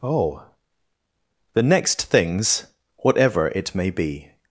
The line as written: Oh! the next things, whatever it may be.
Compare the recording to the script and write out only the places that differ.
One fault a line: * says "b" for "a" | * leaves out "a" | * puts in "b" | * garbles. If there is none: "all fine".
all fine